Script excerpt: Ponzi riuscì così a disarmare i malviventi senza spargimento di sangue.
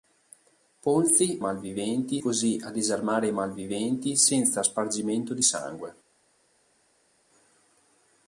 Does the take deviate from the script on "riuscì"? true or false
true